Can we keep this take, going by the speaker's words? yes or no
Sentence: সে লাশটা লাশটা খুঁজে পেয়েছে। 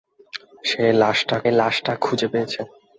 yes